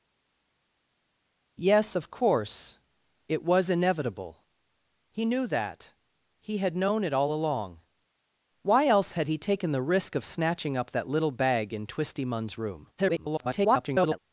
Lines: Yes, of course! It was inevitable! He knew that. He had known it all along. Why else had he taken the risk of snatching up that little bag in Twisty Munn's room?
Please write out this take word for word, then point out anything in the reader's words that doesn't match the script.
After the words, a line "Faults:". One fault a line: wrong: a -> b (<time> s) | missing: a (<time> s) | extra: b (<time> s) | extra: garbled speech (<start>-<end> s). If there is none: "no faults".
Yes, of course! It was inevitable! He knew that. He had known it all along. Why else had he taken the risk of snatching up that little bag in Twisty Munn's room? [garbled]
Faults:
extra: garbled speech (13.0-14.2 s)